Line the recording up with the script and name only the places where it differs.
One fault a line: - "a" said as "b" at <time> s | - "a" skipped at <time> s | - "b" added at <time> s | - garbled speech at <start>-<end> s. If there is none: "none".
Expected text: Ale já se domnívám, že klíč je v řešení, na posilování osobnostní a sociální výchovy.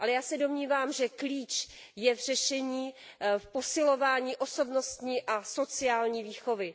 - "na" said as "v" at 3.4 s